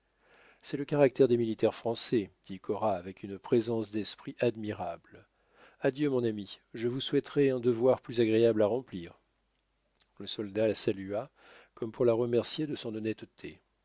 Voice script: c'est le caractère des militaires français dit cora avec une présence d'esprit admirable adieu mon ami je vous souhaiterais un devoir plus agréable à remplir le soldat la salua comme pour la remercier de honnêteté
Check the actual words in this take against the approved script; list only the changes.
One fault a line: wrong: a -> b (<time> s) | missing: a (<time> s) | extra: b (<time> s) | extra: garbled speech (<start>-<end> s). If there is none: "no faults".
extra: son (12.8 s)